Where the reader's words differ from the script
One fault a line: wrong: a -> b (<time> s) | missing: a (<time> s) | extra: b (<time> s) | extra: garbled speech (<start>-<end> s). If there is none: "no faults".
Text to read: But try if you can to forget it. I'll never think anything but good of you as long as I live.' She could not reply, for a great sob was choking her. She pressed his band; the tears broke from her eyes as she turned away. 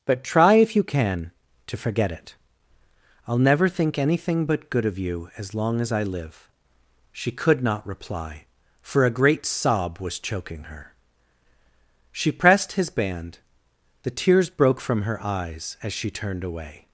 no faults